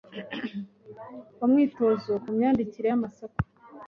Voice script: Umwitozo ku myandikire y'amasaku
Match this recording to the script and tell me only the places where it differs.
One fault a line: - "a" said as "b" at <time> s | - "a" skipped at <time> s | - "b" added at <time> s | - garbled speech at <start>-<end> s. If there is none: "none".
none